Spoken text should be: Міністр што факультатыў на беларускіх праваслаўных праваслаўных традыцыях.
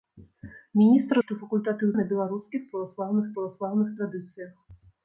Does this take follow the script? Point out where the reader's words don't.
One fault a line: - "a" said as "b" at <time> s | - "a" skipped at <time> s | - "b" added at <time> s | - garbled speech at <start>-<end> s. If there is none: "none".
none